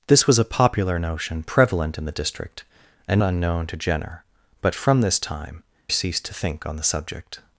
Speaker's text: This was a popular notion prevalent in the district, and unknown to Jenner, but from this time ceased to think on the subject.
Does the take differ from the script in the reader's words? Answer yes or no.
no